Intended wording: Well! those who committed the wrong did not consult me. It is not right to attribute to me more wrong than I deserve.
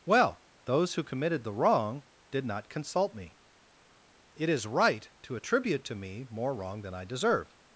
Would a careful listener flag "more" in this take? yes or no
no